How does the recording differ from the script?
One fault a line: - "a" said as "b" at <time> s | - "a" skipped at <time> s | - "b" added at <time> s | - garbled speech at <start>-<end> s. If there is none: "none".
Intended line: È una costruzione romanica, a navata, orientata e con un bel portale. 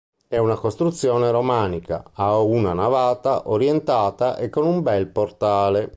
- "una" added at 2.4 s